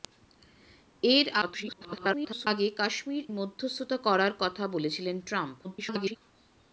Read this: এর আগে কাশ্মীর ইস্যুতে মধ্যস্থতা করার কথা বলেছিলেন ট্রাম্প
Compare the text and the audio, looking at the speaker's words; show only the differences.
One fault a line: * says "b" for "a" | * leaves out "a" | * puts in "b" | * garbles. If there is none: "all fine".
* garbles
* leaves out "ইস্যুতে"
* garbles